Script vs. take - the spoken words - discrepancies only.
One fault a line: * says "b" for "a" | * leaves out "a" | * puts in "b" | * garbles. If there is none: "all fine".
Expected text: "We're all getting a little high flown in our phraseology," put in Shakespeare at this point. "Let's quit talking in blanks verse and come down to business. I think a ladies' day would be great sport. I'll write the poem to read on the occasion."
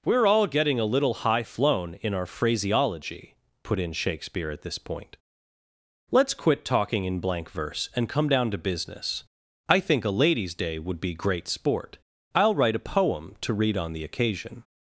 * says "blank" for "blanks"
* says "a" for "the"